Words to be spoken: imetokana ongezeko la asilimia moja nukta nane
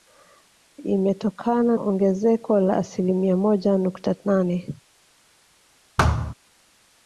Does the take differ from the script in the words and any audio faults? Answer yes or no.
yes